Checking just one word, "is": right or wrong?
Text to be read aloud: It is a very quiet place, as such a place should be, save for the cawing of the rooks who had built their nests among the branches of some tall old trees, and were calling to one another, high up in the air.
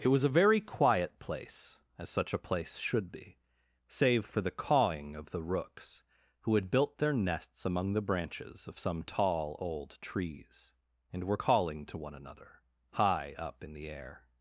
wrong